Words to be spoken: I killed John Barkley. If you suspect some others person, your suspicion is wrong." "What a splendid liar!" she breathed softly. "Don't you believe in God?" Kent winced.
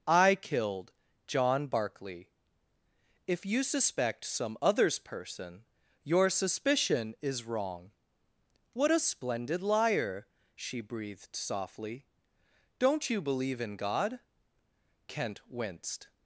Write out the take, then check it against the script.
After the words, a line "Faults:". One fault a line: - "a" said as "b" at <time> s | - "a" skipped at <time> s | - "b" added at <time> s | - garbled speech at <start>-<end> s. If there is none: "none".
I killed John Barkley. If you suspect some others person, your suspicion is wrong." "What a splendid liar!" she breathed softly. "Don't you believe in God?" Kent winced.
Faults:
none